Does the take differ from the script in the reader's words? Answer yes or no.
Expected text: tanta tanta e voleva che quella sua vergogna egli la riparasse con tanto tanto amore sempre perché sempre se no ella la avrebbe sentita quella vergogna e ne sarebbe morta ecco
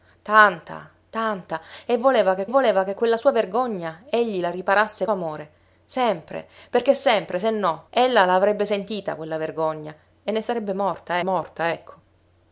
yes